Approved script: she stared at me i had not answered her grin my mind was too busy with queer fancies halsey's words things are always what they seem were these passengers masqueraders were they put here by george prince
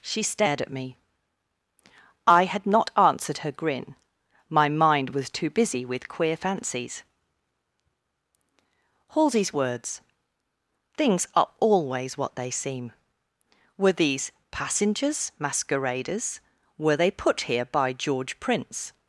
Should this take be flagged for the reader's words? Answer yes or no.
no